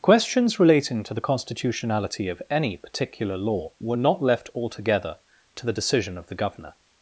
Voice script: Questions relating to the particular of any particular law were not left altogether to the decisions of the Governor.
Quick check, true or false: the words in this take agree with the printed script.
false